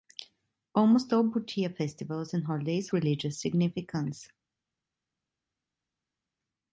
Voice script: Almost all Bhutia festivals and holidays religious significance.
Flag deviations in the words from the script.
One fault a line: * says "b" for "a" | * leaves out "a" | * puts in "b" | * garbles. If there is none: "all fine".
all fine